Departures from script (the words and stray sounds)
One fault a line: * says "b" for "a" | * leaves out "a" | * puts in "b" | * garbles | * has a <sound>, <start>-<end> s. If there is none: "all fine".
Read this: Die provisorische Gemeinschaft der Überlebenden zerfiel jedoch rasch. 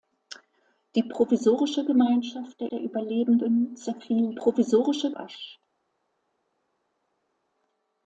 * puts in "der"
* says "provisorische" for "jedoch"